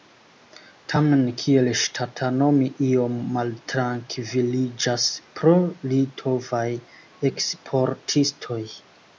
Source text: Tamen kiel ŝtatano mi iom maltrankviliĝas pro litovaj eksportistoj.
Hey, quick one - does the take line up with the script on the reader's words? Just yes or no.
yes